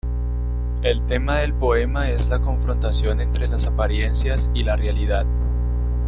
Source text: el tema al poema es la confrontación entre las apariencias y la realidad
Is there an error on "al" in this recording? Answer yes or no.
yes